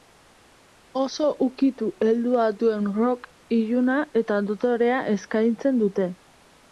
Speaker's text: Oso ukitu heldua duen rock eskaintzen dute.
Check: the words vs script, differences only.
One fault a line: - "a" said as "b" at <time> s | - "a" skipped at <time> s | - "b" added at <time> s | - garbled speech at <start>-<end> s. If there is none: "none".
- "iluna eta dotorea" added at 3.6 s